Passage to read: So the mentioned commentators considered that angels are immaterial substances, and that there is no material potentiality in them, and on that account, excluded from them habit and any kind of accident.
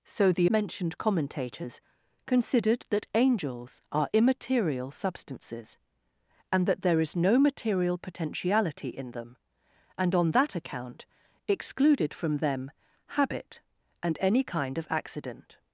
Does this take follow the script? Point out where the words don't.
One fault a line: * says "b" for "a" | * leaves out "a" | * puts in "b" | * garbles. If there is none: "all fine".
all fine